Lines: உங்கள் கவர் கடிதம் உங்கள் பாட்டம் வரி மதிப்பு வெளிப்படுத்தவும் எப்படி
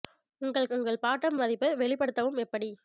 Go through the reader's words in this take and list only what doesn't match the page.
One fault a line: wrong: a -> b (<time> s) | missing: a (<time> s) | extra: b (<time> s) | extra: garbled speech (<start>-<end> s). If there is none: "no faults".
missing: கவர் கடிதம் (0.7 s)
missing: வரி (1.4 s)